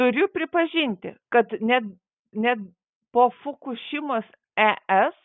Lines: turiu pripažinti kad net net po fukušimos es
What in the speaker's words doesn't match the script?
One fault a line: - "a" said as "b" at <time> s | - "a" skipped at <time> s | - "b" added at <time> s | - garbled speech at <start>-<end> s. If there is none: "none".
none